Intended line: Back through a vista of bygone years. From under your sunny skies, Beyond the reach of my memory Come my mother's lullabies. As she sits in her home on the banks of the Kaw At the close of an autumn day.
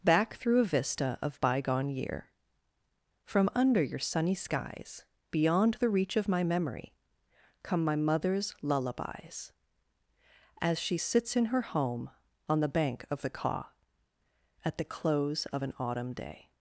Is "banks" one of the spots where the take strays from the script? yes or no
yes